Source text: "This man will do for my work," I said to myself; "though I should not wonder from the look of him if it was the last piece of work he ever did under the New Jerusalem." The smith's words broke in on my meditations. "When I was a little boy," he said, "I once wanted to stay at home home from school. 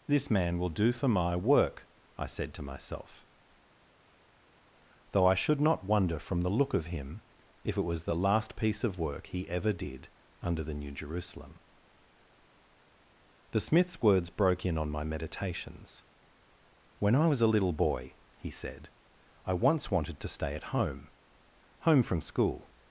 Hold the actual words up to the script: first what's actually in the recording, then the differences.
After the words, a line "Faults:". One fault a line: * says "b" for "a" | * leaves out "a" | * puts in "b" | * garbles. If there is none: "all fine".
"This man will do for my work," I said to myself; "though I should not wonder from the look of him if it was the last piece of work he ever did under the New Jerusalem." The smith's words broke in on my meditations. "When I was a little boy," he said, "I once wanted to stay at home home from school.
Faults:
all fine